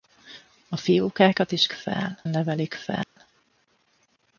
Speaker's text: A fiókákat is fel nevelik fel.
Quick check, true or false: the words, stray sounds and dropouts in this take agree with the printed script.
false